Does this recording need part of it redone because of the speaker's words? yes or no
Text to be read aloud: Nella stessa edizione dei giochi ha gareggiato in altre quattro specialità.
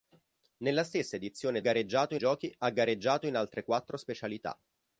yes